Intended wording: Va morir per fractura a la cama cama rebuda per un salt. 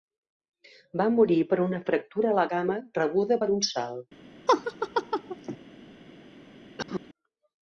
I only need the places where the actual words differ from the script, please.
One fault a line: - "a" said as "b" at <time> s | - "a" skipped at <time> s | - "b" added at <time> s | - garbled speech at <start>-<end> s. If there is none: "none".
- "una" added at 1.6 s
- "cama" skipped at 2.8 s